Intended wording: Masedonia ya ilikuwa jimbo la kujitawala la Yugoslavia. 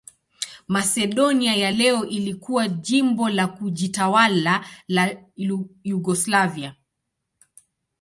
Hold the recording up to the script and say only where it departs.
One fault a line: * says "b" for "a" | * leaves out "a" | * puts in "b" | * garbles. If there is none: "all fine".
* puts in "leo"